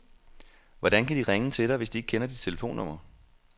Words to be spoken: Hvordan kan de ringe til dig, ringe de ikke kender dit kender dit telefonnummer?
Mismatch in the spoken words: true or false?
true